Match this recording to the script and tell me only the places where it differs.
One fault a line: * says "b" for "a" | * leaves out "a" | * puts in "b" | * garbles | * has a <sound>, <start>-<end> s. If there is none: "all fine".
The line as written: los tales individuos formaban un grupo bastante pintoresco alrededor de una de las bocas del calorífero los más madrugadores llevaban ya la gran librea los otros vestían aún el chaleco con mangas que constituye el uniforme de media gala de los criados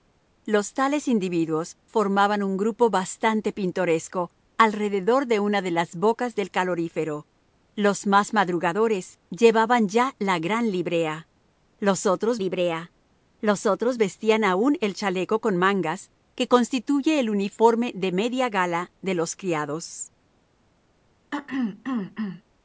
* puts in "librea los otros"
* has a throat clearing, 21.3-22.4 s